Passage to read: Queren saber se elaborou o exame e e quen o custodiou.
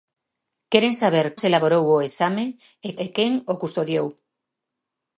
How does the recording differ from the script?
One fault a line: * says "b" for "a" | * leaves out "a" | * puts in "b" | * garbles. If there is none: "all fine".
all fine